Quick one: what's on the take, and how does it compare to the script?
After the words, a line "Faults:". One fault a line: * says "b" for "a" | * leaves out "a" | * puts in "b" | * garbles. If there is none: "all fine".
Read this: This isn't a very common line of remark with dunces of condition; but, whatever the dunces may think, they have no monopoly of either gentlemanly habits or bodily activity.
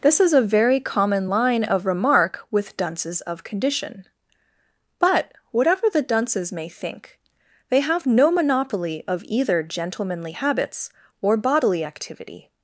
This is a very common line of remark with dunces of condition; but, whatever the dunces may think, they have no monopoly of either gentlemanly habits or bodily activity.
Faults:
* says "is" for "isn't"